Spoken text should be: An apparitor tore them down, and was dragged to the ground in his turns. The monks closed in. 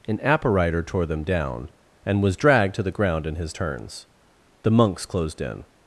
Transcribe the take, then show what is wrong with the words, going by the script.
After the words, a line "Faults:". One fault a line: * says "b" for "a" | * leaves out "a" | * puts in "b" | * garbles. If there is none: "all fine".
An apparitor tore them down, and was dragged to the ground in his turns. The monks closed in.
Faults:
all fine